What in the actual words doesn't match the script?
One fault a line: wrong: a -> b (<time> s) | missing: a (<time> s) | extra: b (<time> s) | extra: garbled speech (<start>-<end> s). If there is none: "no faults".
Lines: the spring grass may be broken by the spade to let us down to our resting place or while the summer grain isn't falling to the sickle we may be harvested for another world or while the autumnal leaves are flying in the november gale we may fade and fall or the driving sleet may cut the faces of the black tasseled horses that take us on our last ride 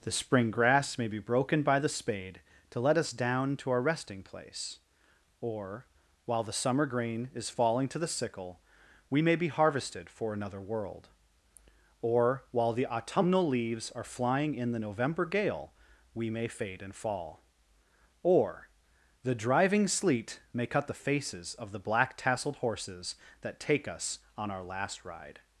wrong: isn't -> is (7.3 s)